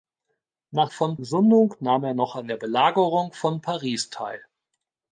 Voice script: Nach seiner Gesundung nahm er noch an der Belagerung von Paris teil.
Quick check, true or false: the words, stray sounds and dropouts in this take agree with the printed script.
false